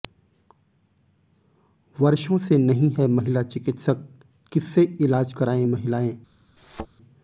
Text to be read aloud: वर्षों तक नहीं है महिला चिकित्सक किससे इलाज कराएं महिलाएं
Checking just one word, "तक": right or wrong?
wrong